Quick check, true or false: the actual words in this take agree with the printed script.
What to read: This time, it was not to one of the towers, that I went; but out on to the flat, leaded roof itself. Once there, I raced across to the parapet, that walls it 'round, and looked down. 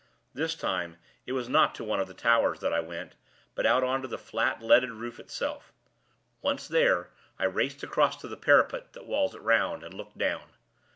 true